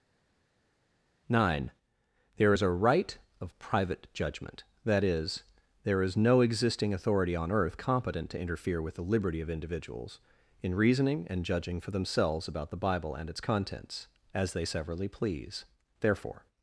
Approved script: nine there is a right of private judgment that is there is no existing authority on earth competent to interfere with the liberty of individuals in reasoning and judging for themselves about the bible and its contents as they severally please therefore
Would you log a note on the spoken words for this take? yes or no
no